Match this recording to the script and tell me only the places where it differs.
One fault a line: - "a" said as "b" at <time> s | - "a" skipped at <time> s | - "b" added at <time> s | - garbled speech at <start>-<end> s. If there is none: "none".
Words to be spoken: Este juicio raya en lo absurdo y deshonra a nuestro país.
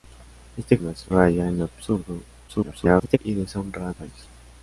- "juicio" said as "nuestro" at 0.8 s
- garbled speech at 2.5-3.2 s
- "nuestro" skipped at 3.9 s